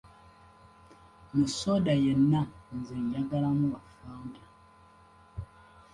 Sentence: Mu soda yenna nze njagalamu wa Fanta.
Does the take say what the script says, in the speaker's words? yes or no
yes